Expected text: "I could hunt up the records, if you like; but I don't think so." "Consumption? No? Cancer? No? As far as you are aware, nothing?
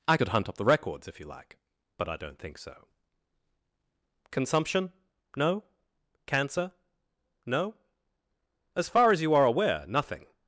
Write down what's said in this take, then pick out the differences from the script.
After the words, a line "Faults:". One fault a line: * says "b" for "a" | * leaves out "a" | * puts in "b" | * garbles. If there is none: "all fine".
"I could hunt up the records, if you like; but I don't think so." "Consumption? No? Cancer? No? As far as you are aware, nothing?
Faults:
all fine